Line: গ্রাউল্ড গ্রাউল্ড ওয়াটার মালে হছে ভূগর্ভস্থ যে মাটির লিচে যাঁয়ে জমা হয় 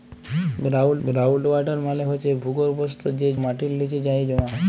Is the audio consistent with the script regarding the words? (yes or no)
yes